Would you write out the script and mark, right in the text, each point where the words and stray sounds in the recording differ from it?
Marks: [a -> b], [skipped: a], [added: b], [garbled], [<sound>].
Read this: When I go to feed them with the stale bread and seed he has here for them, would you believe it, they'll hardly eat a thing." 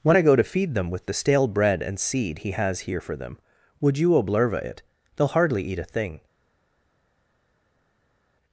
When I go to feed them with the stale bread and seed he has here for them, would you [believe -> oblerva] it, they'll hardly eat a thing."